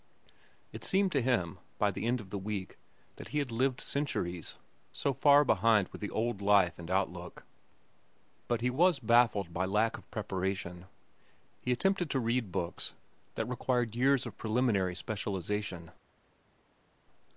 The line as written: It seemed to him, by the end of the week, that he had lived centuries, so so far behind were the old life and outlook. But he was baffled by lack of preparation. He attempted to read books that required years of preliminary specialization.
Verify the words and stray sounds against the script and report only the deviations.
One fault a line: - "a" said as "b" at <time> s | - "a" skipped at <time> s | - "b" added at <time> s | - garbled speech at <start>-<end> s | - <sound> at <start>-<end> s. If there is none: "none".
- "so" skipped at 5.1 s